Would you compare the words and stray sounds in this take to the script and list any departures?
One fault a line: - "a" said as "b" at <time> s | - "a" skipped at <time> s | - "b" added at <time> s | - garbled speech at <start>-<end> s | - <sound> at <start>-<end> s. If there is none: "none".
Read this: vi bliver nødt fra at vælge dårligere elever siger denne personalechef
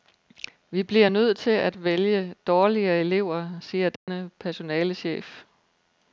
- "fra" said as "til" at 1.4 s
- dropout at 4.0-4.1 s